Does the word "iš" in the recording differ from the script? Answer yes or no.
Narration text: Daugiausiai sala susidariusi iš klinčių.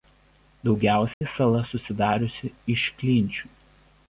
no